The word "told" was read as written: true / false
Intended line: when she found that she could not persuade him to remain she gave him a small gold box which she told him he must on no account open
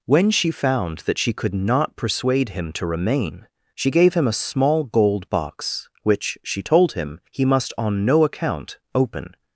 true